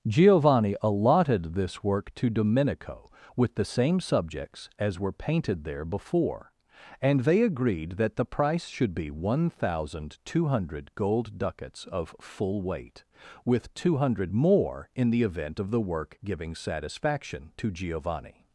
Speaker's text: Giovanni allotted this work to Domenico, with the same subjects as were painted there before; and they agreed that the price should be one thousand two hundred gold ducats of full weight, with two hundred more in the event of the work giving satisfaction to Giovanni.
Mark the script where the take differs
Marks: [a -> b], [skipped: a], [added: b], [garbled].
Giovanni allotted this work to Domenico, with the same subjects as were painted there before; and they agreed that the price should be one thousand two hundred gold ducats of full weight, with two hundred more in the event of the work giving satisfaction to Giovanni.